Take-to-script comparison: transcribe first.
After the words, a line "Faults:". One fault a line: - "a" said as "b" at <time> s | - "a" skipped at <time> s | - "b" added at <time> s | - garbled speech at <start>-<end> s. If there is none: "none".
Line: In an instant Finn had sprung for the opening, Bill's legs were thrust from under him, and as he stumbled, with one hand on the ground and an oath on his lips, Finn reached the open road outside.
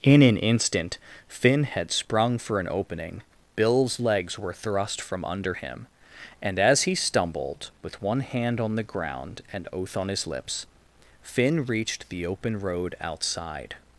In an instant Finn had sprung for an opening, Bill's legs were thrust from under him, and as he stumbled, with one hand on the ground and oath on his lips, Finn reached the open road outside.
Faults:
- "the" said as "an" at 2.6 s
- "an" skipped at 9.7 s